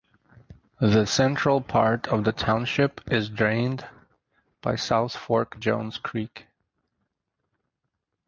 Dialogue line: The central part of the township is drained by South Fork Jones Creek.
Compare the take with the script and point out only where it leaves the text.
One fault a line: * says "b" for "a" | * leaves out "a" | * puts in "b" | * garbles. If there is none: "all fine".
all fine